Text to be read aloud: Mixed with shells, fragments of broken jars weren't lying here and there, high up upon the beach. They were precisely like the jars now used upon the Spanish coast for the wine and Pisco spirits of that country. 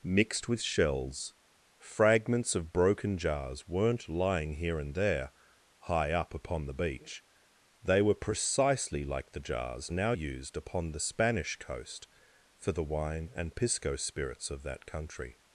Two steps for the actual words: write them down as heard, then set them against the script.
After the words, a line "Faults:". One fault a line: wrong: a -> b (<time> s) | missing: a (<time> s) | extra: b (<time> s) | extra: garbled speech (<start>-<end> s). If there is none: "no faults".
Mixed with shells, fragments of broken jars weren't lying here and there, high up upon the beach. They were precisely like the jars now used upon the Spanish coast for the wine and Pisco spirits of that country.
Faults:
no faults